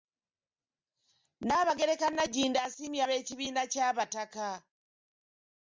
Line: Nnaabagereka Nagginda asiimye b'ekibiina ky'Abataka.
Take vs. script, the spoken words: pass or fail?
pass